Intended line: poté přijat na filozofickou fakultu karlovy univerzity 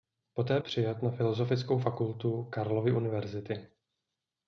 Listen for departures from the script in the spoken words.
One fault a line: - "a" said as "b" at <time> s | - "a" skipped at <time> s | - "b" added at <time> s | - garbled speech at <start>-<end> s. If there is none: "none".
none